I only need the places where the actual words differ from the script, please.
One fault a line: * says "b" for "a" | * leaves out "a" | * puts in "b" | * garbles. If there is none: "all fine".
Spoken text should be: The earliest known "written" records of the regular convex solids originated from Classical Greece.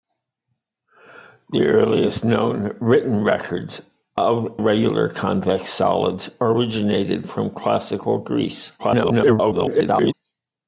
* leaves out "the"
* garbles